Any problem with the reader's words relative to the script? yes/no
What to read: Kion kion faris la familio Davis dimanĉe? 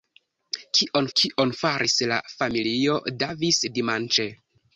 no